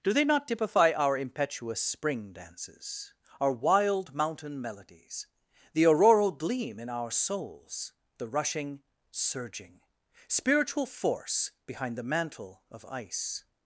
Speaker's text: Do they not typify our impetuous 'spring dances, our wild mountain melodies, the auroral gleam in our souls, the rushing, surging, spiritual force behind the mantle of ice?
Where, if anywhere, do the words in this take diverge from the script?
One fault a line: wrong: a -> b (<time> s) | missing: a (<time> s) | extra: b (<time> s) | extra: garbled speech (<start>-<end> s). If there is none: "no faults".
no faults